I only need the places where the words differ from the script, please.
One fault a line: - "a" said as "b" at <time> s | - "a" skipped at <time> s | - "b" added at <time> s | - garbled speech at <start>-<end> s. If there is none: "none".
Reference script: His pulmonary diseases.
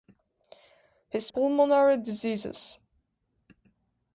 none